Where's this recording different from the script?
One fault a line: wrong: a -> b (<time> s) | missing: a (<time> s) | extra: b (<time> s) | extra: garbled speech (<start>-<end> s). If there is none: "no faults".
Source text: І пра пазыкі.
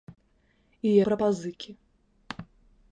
no faults